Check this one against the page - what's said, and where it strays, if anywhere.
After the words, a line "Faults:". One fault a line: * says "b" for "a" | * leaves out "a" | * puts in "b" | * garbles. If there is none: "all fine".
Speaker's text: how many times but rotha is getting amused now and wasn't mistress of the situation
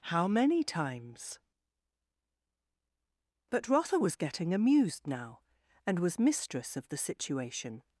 how many times but rotha was getting amused now and was mistress of the situation
Faults:
* says "was" for "is"
* says "was" for "wasn't"